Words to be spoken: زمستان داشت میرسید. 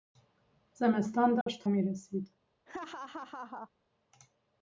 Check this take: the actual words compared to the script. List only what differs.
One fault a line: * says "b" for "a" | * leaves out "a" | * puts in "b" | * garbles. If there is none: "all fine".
all fine